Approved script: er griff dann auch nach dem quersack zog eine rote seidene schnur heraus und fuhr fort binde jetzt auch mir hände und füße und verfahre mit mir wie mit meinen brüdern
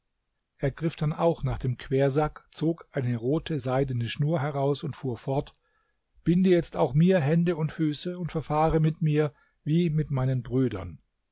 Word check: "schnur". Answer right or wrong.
right